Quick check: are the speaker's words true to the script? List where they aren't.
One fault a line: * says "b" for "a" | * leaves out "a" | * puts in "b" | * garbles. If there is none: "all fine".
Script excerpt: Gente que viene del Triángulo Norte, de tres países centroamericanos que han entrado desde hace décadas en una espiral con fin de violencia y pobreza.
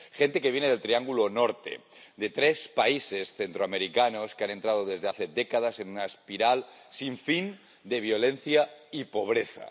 * says "sin" for "con"